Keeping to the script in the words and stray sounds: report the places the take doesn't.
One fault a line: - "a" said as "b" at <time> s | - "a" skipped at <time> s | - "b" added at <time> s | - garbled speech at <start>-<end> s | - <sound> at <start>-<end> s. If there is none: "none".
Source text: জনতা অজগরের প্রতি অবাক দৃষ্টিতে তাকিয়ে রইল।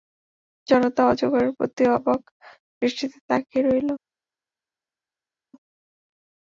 none